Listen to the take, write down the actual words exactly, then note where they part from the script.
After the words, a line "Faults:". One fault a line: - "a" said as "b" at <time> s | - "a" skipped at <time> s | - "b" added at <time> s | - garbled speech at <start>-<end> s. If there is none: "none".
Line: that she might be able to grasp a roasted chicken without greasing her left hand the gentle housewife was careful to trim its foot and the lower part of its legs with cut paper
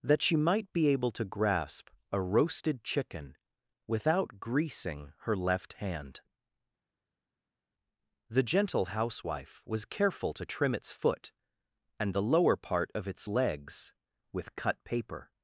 that she might be able to grasp a roasted chicken without greasing her left hand the gentle housewife was careful to trim its foot and the lower part of its legs with cut paper
Faults:
none